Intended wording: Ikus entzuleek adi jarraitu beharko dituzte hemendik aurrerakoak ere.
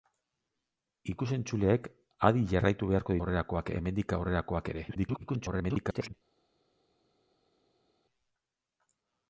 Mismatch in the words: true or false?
true